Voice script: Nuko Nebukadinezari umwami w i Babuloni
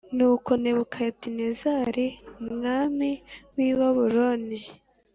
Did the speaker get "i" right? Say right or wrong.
right